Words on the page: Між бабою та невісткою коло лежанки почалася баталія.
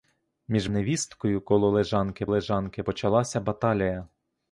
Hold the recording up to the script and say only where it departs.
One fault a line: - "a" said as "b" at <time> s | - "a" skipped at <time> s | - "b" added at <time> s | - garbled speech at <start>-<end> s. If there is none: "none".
- "бабою та" skipped at 0.7 s
- "лежанки" added at 2.3 s